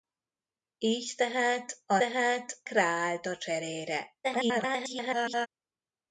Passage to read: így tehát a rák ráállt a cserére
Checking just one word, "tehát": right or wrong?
right